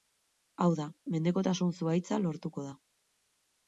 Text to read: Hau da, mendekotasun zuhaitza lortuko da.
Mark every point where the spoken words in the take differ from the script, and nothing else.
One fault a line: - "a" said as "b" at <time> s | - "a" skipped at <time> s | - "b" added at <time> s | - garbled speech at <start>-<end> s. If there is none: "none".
none